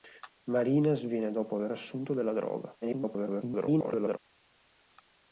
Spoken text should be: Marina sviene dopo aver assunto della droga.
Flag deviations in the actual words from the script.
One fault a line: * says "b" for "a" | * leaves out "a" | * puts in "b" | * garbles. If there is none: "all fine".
* garbles